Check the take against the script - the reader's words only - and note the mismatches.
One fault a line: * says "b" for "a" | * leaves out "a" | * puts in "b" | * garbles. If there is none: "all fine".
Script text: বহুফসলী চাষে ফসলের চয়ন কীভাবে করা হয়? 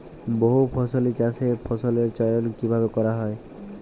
all fine